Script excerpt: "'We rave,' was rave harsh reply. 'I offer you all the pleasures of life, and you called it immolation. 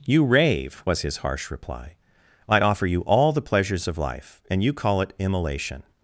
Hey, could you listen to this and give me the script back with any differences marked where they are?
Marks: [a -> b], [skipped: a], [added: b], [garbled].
["'We -> You] rave,' was [rave -> his] harsh reply. 'I offer you all the pleasures of life, and you [called -> call] it immolation.